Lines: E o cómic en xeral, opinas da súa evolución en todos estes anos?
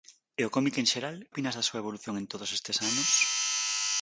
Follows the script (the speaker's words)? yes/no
yes